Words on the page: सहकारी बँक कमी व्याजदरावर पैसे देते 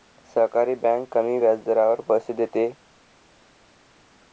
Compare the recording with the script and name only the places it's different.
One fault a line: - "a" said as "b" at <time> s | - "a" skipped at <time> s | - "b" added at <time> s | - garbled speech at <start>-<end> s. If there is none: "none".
none